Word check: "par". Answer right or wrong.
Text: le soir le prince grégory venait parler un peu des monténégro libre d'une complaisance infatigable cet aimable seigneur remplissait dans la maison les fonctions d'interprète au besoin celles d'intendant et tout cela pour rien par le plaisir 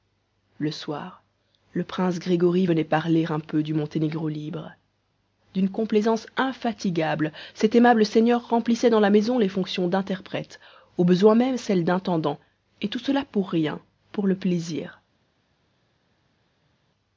wrong